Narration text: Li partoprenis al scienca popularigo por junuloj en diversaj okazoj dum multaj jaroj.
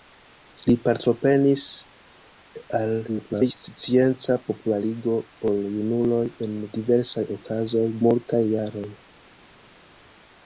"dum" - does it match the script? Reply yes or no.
no